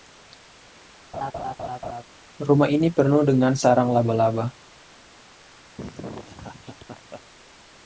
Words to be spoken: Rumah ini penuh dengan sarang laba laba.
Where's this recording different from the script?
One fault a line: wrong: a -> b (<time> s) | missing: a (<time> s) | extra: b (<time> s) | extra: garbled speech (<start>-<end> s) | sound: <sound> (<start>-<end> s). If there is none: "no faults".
sound: laugh (1.1-2.0 s)
sound: laugh (5.8-7.2 s)